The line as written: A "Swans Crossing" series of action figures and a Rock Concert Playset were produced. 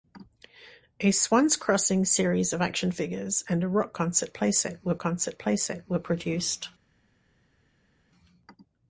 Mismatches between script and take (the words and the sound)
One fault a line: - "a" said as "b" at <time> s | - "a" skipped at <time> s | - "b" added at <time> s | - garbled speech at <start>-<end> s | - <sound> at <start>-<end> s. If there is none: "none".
- "Concert Playset were" added at 5.0 s